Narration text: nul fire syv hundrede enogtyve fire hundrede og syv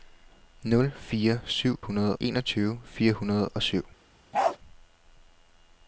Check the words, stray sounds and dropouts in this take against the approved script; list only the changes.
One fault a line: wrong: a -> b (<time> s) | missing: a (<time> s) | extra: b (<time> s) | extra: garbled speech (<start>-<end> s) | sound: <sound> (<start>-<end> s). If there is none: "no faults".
sound: bark (4.3-4.6 s)